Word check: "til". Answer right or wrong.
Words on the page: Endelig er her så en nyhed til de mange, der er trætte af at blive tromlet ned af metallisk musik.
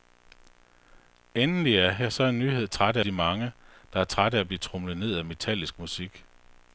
wrong